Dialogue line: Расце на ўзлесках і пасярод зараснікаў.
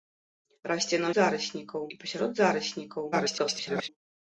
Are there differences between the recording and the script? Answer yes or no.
yes